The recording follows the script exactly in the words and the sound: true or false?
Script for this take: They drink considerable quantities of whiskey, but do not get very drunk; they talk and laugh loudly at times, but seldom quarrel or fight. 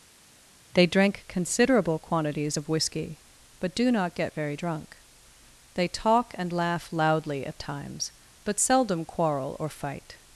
true